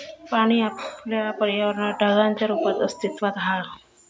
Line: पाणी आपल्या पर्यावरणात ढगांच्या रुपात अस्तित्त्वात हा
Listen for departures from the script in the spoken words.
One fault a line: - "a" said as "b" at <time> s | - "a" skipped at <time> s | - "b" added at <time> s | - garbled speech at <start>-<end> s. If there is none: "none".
none